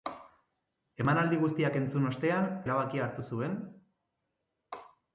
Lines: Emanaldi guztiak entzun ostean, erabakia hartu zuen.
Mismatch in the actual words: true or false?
false